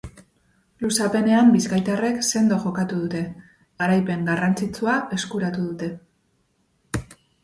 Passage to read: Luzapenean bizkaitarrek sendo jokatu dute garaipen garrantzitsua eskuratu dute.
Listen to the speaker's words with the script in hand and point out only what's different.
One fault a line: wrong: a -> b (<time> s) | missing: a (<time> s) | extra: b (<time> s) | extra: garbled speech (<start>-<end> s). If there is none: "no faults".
no faults